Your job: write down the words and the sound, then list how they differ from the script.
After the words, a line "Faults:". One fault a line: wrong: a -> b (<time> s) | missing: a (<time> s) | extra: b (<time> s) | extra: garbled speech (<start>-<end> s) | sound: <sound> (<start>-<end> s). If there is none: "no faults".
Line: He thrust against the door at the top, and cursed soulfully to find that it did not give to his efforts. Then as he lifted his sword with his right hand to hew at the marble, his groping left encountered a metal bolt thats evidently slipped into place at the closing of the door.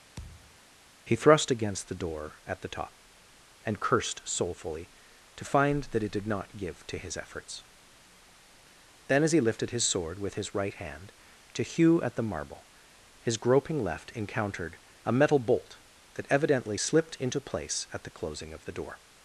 He thrust against the door at the top, and cursed soulfully to find that it did not give to his efforts. Then as he lifted his sword with his right hand to hew at the marble, his groping left encountered a metal bolt that evidently slipped into place at the closing of the door.
Faults:
sound: thud (0.2-0.6 s)
wrong: thats -> that (16.2 s)